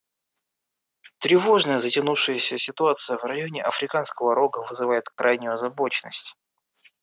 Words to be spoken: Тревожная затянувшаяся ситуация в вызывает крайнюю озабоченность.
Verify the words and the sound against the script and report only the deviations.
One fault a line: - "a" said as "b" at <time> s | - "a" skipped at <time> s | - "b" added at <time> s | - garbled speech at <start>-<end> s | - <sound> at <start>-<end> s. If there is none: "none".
- "районе Африканского Рога" added at 3.2 s
- dropout at 5.1-5.2 s